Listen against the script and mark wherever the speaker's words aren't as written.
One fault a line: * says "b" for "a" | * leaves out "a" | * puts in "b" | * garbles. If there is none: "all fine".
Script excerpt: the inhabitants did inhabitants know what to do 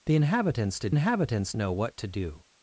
all fine